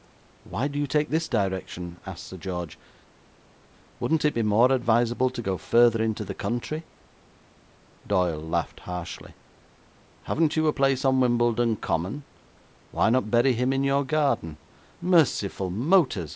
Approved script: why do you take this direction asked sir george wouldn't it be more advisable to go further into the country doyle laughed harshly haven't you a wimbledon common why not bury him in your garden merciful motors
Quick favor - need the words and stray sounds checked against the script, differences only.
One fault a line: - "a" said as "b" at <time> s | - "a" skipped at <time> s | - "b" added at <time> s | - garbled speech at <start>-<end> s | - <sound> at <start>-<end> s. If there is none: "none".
- "place on" added at 10.7 s